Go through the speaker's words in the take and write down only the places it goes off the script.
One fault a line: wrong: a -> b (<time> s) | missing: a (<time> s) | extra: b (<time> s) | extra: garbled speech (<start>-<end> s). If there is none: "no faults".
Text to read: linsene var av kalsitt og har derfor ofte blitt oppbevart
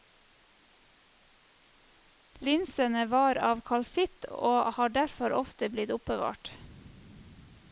no faults